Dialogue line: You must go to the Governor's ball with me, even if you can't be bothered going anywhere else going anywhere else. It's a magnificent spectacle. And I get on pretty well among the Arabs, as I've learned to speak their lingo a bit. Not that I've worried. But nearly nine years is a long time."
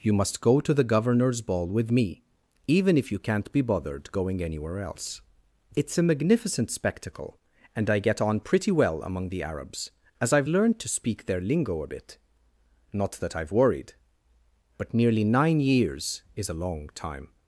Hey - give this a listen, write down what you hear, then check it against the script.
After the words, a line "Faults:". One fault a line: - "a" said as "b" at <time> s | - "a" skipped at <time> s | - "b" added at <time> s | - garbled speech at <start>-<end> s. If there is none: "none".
You must go to the Governor's ball with me, even if you can't be bothered going anywhere else. It's a magnificent spectacle. And I get on pretty well among the Arabs, as I've learned to speak their lingo a bit. Not that I've worried. But nearly nine years is a long time."
Faults:
- "going anywhere else" skipped at 5.2 s